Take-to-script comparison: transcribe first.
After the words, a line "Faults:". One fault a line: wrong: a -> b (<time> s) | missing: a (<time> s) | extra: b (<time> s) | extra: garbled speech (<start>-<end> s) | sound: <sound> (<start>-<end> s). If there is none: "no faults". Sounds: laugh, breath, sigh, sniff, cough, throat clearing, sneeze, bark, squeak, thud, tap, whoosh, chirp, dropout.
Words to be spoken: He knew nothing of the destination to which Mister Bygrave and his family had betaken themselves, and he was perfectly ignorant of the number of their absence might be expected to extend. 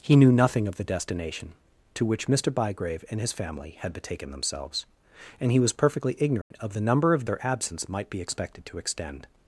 He knew nothing of the destination to which Mister Bygrave and his family had betaken themselves, and he was perfectly ignorant of the number of their absence might be expected to extend.
Faults:
sound: dropout (6.4-6.5 s)